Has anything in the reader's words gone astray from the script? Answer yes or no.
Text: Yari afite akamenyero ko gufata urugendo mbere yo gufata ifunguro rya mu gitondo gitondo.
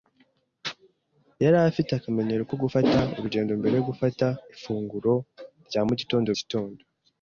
no